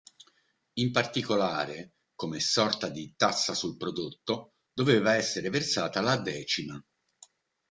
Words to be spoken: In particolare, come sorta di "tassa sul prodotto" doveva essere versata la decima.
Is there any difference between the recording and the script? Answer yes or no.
no